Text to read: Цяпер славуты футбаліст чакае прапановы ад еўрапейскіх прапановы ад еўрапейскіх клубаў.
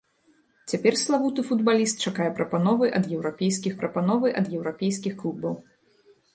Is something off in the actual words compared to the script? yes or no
no